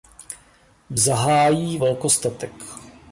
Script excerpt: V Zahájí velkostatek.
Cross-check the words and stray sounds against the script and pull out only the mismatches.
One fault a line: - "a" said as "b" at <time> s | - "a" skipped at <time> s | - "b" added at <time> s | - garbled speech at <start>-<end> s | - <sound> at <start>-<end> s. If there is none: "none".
none